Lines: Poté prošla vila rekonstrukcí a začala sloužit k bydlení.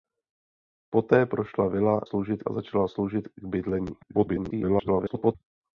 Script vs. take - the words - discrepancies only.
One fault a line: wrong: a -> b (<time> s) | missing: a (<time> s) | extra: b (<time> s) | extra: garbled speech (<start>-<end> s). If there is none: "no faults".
wrong: rekonstrukcí -> sloužit (2.0 s)
extra: garbled speech (4.0-5.4 s)